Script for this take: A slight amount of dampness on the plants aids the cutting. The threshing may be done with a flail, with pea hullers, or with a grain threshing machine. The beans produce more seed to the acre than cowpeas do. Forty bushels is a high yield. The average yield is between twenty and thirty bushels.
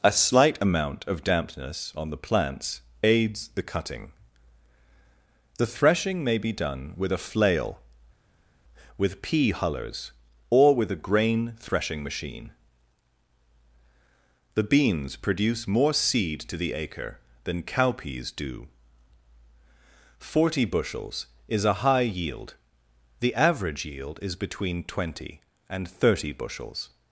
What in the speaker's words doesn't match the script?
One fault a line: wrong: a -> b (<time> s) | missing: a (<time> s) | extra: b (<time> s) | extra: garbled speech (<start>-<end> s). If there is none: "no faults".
no faults